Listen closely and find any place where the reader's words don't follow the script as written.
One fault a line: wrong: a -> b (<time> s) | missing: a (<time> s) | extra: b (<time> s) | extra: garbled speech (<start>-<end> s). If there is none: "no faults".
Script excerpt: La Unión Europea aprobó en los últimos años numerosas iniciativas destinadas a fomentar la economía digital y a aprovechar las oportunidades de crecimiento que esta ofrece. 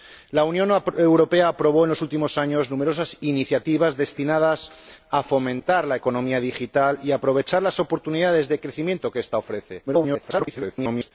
extra: garbled speech (9.9-11.1 s)